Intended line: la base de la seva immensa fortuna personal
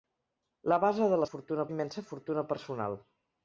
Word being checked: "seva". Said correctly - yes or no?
no